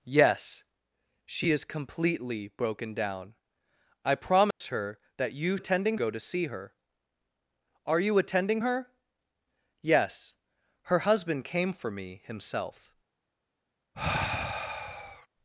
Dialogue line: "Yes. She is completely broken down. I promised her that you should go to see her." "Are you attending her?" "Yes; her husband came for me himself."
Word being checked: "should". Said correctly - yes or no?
no